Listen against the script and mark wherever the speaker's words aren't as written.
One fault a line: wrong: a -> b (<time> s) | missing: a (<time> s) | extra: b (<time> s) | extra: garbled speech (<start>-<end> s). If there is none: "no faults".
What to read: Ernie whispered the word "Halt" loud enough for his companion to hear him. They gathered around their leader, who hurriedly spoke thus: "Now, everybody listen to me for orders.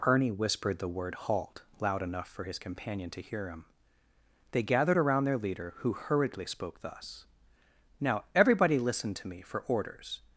no faults